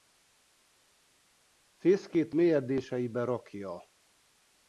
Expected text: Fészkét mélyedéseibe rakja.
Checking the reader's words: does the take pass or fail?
pass